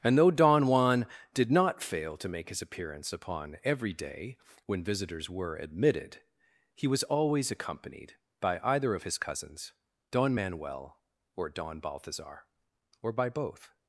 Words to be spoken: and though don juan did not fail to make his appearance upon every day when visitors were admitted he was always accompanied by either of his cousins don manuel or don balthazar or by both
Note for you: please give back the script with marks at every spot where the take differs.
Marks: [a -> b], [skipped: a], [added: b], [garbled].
and though don juan did not fail to make his appearance upon every day when visitors were admitted he was always accompanied by either of his cousins don manuel or don balthazar or by both